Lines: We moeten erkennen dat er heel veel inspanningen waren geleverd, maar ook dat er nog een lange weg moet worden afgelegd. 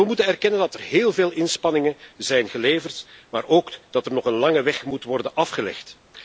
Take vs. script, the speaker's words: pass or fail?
fail